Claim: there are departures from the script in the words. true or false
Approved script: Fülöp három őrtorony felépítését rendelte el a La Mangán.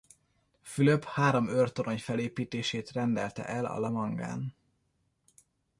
false